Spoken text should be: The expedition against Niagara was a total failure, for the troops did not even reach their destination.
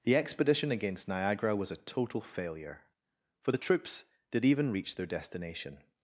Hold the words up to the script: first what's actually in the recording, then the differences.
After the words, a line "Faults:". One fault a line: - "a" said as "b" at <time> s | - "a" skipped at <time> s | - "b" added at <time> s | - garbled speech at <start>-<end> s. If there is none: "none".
The expedition against Niagara was a total failure, for the troops did even reach their destination.
Faults:
- "not" skipped at 4.4 s